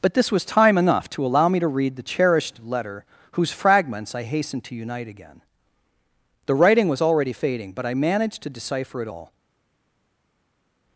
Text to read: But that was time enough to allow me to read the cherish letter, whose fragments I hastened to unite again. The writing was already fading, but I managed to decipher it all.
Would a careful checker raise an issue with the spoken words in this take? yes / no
yes